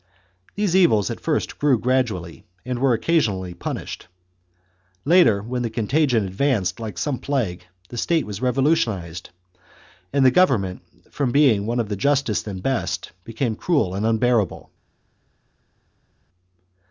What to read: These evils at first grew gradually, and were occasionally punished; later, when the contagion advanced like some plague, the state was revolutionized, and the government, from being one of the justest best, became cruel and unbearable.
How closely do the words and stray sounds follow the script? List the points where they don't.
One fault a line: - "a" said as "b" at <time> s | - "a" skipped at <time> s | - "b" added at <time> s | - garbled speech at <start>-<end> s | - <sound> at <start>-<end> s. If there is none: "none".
- "and" added at 12.5 s